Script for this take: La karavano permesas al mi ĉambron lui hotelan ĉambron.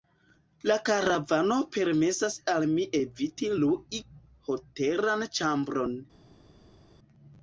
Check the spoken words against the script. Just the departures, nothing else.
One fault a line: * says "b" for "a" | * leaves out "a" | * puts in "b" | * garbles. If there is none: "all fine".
* says "eviti" for "ĉambron"